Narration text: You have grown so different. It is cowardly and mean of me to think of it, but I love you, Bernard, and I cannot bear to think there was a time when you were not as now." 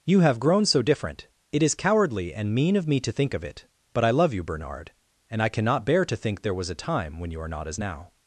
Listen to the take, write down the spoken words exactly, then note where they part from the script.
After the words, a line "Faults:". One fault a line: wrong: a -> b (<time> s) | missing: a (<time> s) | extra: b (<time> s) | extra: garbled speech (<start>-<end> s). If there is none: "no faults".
You have grown so different. It is cowardly and mean of me to think of it, but I love you, Bernard, and I cannot bear to think there was a time when you are not as now."
Faults:
wrong: were -> are (7.4 s)